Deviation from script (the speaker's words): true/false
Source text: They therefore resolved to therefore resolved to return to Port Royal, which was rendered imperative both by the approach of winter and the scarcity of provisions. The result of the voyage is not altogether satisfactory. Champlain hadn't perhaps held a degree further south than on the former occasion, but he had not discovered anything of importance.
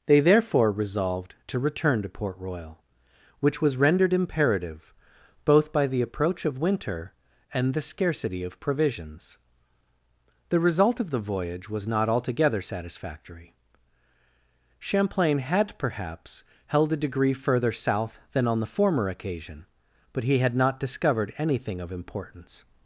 true